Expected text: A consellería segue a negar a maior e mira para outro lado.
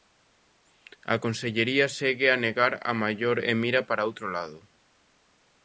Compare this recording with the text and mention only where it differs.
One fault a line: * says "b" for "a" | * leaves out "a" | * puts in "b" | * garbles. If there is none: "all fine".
all fine